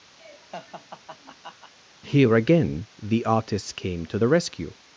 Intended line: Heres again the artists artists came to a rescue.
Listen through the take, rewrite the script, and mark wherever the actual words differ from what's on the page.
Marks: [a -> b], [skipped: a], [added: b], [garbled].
[Heres -> Here] again the artists [skipped: artists] came to [a -> the] rescue.